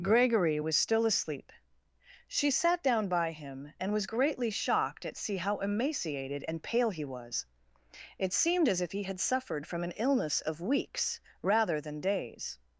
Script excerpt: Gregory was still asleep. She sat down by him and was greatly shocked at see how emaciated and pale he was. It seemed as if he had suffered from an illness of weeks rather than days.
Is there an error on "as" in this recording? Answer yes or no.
no